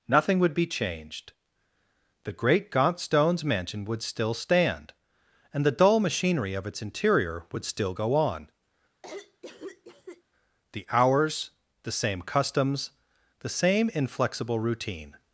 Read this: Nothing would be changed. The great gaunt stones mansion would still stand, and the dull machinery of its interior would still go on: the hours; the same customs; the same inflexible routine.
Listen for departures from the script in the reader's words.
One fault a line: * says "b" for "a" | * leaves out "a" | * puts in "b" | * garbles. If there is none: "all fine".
all fine